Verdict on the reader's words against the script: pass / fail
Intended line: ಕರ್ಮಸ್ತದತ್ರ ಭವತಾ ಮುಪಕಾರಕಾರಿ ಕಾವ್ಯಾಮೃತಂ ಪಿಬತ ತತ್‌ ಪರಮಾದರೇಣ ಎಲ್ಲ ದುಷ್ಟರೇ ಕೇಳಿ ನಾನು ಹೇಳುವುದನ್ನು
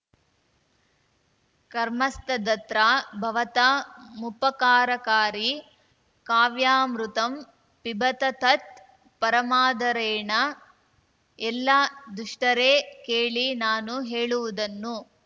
pass